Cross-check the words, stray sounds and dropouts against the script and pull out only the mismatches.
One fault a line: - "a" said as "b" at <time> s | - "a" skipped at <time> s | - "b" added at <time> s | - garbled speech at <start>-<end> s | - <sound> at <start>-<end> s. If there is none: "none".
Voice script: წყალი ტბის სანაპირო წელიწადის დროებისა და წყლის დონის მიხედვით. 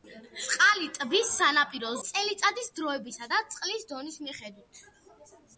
none